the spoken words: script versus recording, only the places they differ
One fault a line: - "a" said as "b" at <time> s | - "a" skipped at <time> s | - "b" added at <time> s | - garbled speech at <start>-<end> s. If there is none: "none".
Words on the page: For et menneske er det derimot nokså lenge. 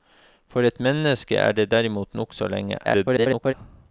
- garbled speech at 2.8-3.5 s